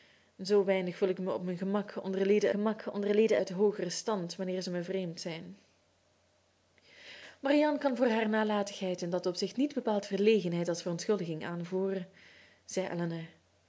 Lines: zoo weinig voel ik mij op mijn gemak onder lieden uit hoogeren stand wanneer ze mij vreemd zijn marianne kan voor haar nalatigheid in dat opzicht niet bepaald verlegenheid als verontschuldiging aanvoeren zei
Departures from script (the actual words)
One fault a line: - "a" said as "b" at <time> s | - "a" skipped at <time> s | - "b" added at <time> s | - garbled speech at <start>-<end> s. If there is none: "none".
- "gemak onder lieden" added at 2.5 s